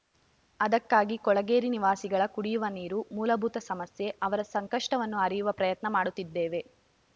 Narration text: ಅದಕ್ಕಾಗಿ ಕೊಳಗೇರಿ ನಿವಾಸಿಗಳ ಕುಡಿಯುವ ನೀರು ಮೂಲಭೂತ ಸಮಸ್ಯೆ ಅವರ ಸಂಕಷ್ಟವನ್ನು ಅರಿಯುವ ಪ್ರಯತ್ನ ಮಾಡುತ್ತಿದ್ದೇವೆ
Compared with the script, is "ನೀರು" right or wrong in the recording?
right